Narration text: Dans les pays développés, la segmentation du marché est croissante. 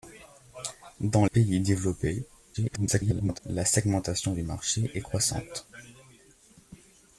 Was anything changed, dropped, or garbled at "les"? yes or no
yes